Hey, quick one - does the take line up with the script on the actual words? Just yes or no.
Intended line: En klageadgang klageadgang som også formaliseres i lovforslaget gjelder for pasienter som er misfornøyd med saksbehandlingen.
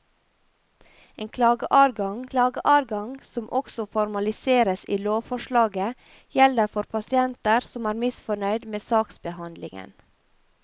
yes